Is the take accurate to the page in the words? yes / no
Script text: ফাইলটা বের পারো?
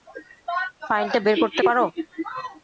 no